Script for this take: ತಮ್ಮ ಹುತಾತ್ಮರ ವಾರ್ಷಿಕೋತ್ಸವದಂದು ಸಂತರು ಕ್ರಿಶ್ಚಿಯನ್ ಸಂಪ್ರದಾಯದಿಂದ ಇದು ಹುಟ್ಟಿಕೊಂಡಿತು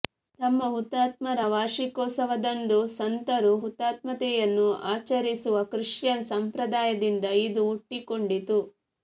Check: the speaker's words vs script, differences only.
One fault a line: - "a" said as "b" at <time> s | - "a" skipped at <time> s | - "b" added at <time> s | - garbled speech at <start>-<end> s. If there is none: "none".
- "ಹುತಾತ್ಮತೆಯನ್ನು ಆಚರಿಸುವ" added at 3.6 s